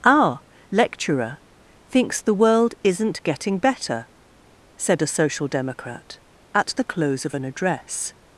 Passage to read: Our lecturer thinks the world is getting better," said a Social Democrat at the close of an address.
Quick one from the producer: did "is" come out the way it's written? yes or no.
no